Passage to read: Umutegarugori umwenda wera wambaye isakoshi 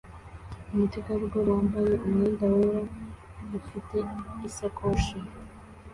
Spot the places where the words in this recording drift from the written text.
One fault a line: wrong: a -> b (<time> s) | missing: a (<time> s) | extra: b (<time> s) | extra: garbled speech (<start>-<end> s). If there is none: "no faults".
extra: wambaye (1.6 s)
wrong: wambaye -> ufite (3.6 s)